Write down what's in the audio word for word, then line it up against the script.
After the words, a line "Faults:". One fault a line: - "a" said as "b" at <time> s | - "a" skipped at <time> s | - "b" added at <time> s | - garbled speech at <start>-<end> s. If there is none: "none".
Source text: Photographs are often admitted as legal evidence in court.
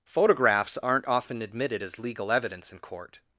Photographs aren't often admitted as legal evidence in court.
Faults:
- "are" said as "aren't" at 0.8 s